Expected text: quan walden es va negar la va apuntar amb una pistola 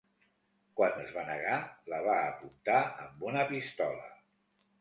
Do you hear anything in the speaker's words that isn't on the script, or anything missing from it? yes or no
yes